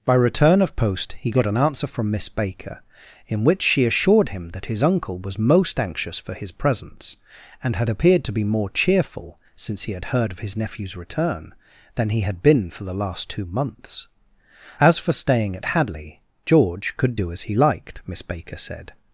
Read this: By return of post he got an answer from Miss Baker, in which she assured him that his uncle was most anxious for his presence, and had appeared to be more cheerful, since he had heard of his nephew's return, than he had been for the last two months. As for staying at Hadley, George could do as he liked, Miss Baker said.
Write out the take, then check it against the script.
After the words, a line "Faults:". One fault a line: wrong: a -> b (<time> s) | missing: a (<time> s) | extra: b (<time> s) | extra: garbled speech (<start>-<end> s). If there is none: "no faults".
By return of post he got an answer from Miss Baker, in which she assured him that his uncle was most anxious for his presence, and had appeared to be more cheerful, since he had heard of his nephew's return, than he had been for the last two months. As for staying at Hadley, George could do as he liked, Miss Baker said.
Faults:
no faults